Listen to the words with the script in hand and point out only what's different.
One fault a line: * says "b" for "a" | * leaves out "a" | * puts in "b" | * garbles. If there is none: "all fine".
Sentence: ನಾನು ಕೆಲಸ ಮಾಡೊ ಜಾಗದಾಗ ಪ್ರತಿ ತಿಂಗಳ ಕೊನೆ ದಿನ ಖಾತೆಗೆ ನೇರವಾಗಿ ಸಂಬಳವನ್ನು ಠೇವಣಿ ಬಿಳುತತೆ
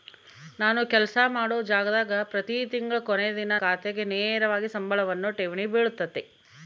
all fine